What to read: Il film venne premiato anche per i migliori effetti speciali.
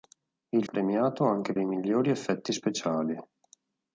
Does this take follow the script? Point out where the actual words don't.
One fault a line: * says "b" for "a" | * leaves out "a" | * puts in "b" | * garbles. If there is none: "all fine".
* leaves out "film venne"
* leaves out "per"